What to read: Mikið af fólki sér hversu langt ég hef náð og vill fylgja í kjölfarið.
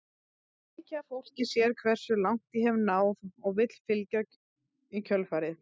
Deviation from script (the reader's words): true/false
false